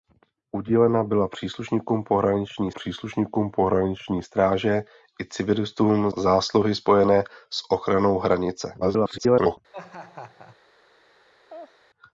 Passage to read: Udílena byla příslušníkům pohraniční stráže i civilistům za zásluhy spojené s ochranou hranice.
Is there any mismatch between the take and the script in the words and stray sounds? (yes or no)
yes